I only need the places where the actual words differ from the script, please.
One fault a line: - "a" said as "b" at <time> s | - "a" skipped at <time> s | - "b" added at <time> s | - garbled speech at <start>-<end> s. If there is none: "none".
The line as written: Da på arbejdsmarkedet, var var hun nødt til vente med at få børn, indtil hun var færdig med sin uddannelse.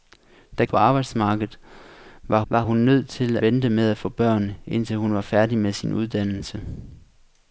none